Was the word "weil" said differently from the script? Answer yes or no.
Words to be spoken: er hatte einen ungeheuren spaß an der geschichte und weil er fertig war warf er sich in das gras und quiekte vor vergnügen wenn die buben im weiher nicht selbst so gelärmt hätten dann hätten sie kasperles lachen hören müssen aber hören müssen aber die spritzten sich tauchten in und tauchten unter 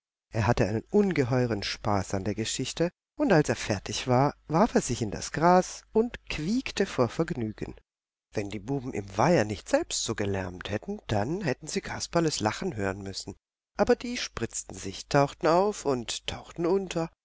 yes